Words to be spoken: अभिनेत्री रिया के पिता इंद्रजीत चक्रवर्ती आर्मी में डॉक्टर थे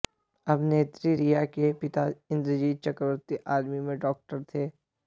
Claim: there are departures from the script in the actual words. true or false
false